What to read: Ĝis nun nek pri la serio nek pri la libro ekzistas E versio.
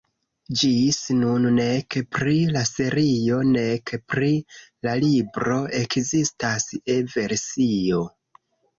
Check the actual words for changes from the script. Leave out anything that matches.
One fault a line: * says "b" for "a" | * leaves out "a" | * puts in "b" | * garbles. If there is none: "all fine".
all fine